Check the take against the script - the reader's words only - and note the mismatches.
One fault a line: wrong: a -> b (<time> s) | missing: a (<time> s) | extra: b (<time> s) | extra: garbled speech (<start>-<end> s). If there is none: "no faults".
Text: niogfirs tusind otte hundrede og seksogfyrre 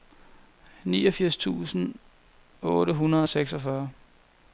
no faults